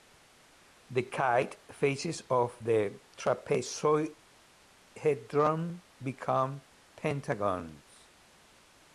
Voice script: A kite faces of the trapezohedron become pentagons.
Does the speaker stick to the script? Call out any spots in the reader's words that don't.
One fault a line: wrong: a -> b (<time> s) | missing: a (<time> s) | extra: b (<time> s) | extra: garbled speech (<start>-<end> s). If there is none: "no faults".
wrong: A -> The (0.9 s)